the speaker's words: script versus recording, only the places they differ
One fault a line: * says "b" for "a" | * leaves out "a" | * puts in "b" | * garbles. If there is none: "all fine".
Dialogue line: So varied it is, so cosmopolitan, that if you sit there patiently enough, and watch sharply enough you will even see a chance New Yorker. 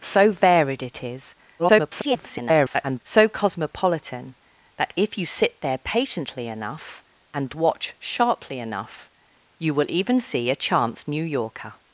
* garbles